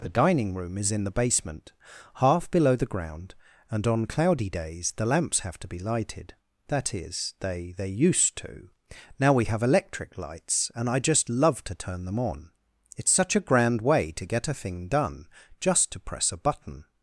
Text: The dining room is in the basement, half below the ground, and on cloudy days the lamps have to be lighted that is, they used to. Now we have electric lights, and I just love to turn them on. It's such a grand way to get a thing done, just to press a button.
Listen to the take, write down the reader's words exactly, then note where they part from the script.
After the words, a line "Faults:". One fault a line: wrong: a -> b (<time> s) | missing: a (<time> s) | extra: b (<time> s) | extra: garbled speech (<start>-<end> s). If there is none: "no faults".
The dining room is in the basement, half below the ground, and on cloudy days the lamps have to be lighted that is, they they used to. Now we have electric lights, and I just love to turn them on. It's such a grand way to get a thing done, just to press a button.
Faults:
extra: they (7.7 s)